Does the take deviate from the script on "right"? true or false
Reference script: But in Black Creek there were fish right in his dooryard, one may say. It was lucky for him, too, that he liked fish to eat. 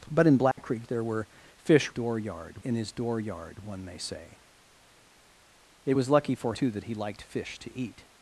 true